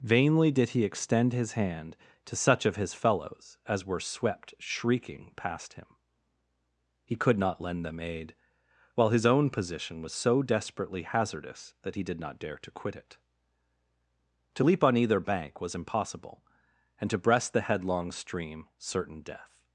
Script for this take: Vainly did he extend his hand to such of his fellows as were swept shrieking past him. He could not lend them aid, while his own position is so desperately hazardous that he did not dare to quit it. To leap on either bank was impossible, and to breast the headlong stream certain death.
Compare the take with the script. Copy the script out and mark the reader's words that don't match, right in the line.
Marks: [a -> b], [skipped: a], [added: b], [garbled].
Vainly did he extend his hand to such of his fellows as were swept shrieking past him. He could not lend them aid, while his own position [is -> was] so desperately hazardous that he did not dare to quit it. To leap on either bank was impossible, and to breast the headlong stream certain death.